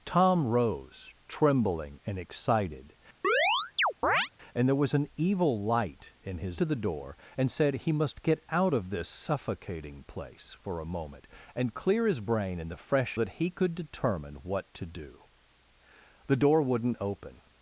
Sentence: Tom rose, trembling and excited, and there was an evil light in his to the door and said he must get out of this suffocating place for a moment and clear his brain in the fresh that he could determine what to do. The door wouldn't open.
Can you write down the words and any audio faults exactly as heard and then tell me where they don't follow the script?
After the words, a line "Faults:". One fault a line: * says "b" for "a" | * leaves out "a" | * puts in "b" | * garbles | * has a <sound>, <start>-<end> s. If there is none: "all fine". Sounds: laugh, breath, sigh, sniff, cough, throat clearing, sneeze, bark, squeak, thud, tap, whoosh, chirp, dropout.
Tom rose, trembling and excited, and there was an evil light in his to the door and said he must get out of this suffocating place for a moment and clear his brain in the fresh that he could determine what to do. The door wouldn't open.
Faults:
* has a chirp, 3.2-4.3 s